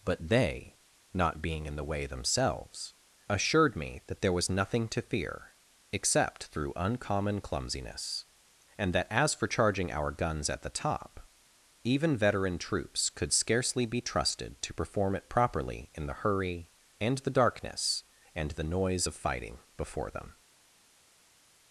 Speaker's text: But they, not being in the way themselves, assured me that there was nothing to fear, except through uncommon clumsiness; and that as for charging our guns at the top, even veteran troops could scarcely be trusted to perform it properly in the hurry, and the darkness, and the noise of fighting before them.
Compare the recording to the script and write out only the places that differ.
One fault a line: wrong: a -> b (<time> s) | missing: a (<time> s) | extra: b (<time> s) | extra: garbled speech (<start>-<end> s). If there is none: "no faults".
no faults